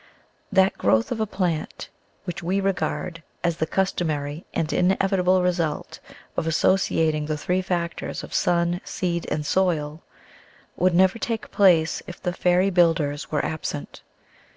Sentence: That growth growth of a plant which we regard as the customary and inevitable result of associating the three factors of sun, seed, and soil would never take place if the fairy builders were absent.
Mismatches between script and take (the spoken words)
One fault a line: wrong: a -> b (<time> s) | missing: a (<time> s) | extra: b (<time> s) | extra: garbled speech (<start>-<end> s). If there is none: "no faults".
missing: growth (1.1 s)